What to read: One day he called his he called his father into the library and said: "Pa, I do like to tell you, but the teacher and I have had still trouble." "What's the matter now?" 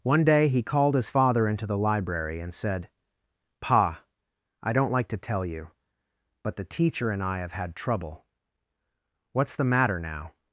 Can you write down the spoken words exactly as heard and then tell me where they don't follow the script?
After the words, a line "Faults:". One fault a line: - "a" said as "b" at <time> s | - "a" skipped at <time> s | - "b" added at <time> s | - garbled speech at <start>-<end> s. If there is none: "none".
One day he called his father into the library and said: "Pa, I don't like to tell you, but the teacher and I have had trouble." "What's the matter now?"
Faults:
- "he called his" skipped at 1.1 s
- "do" said as "don't" at 4.7 s
- "still" skipped at 7.7 s